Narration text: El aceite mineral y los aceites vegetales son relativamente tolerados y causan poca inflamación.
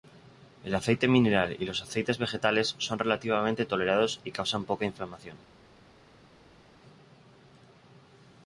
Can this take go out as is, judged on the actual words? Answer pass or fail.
pass